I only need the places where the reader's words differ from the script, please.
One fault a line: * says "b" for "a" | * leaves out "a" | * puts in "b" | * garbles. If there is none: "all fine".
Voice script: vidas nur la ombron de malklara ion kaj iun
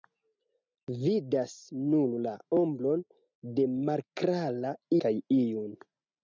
* leaves out "ion"